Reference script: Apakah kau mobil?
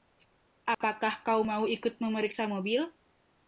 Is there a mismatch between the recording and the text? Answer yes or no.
yes